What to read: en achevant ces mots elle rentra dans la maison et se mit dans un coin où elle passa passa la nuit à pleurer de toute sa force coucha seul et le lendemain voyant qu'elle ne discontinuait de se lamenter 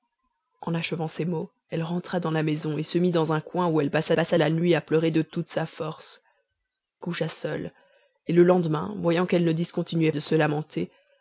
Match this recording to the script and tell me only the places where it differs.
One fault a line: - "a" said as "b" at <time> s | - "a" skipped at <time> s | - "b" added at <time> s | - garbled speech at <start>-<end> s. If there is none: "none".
none